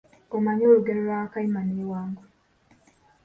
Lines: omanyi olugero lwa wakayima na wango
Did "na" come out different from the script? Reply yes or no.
yes